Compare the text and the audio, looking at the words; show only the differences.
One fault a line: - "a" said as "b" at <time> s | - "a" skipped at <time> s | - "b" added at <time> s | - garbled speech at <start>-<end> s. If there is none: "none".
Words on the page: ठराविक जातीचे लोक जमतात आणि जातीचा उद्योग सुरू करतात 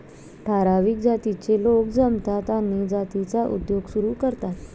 none